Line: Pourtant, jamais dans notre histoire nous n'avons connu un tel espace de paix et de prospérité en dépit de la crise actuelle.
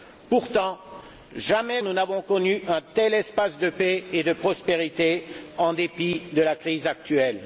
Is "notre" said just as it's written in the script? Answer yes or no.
no